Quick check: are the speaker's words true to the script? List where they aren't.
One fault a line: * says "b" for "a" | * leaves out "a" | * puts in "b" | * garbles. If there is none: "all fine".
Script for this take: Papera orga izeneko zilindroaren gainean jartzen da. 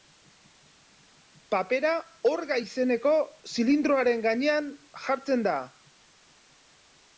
all fine